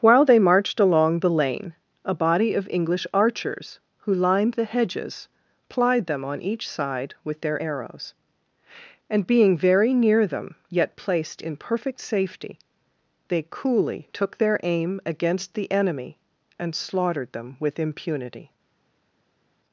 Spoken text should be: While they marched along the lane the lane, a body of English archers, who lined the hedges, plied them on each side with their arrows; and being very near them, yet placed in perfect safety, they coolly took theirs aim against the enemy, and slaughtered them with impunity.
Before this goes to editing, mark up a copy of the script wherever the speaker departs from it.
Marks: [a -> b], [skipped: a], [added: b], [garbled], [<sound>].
While they marched along the lane [skipped: the lane,] a body of English archers, who lined the hedges, plied them on each side with their arrows; and being very near them, yet placed in perfect safety, they coolly took [theirs -> their] aim against the enemy, and slaughtered them with impunity.